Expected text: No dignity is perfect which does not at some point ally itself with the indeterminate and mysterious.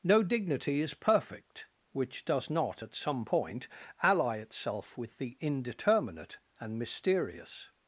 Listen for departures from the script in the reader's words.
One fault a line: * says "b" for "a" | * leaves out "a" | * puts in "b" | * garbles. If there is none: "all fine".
all fine